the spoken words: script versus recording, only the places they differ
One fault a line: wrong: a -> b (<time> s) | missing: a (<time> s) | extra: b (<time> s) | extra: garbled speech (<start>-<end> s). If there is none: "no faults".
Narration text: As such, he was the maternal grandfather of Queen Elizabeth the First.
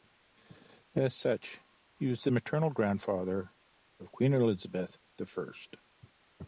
no faults